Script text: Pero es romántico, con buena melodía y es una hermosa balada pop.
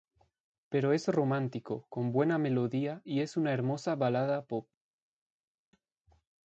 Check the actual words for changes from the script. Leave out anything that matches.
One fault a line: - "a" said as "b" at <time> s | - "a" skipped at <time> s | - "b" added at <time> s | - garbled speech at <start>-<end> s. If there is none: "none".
none